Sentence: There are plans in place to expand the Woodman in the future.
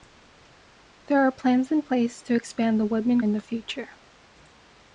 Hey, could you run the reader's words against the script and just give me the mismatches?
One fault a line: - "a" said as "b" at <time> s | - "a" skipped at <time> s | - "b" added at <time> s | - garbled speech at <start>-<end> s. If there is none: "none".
none